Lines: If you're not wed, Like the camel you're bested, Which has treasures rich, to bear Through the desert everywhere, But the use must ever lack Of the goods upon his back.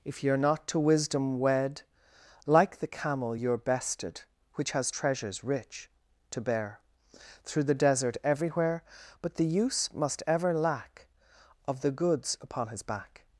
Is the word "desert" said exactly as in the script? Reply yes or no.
yes